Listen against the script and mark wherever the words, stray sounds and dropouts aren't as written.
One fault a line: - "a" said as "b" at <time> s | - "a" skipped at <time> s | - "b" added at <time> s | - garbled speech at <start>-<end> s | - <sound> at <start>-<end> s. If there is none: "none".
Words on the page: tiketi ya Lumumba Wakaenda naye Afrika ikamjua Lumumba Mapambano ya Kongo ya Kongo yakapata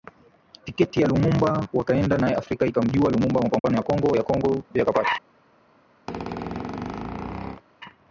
- dropout at 3.6-3.6 s
- squeak at 6.1-7.6 s